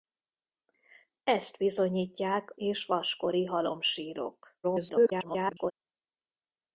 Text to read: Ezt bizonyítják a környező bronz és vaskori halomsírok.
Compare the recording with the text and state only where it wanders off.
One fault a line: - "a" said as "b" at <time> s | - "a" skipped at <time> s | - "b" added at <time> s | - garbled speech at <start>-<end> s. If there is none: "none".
- "a környező bronz" skipped at 2.5 s
- garbled speech at 4.6-5.7 s